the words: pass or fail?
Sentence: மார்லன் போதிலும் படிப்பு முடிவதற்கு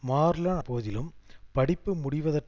pass